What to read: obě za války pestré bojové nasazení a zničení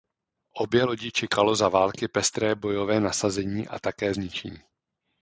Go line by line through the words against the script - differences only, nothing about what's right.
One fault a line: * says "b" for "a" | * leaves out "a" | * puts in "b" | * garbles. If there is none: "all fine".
* puts in "lodi čekalo"
* puts in "také"